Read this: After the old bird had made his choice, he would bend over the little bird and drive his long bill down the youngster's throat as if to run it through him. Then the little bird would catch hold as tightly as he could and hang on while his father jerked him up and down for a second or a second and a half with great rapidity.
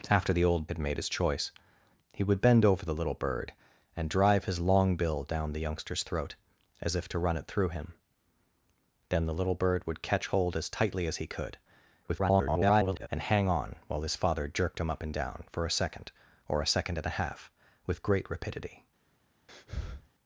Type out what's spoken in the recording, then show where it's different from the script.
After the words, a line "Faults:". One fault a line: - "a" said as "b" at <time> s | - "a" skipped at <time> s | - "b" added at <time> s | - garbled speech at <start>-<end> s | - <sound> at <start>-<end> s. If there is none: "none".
After the old had made his choice, he would bend over the little bird and drive his long bill down the youngster's throat as if to run it through him. Then the little bird would catch hold as tightly as he could [garbled] and hang on while his father jerked him up and down for a second or a second and a half with great rapidity.
Faults:
- "bird" skipped at 0.7 s
- garbled speech at 12.0-13.1 s
- breath at 19.5-20.1 s